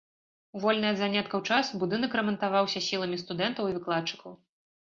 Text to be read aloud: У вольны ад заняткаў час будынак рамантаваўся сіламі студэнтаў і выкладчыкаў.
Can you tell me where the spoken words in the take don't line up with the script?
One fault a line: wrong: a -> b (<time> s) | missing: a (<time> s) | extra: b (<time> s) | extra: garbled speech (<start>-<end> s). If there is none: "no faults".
no faults